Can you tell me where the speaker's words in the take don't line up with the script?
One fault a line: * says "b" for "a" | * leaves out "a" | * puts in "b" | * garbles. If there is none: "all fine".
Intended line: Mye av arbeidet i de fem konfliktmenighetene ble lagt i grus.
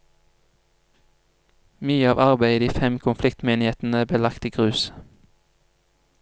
all fine